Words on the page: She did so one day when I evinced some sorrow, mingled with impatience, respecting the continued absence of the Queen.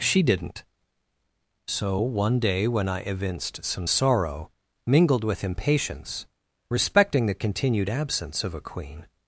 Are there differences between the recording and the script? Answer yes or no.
yes